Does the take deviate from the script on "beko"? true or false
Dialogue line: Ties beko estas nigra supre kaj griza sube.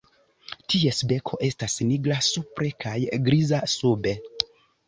false